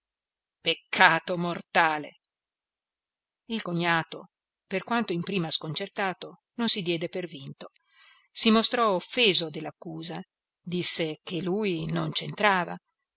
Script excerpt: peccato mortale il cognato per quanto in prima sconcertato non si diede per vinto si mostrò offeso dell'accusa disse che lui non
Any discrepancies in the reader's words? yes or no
no